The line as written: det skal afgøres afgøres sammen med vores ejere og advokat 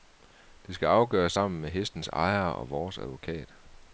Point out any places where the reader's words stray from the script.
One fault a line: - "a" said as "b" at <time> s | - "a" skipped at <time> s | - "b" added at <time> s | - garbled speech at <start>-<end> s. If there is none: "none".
- "afgøres" skipped at 1.3 s
- "vores" said as "hestens" at 1.7 s
- "vores" added at 2.7 s